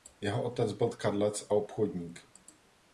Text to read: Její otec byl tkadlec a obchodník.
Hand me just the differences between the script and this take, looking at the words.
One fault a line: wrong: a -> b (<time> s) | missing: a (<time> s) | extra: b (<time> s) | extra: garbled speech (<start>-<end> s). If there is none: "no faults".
wrong: Její -> Jeho (0.2 s)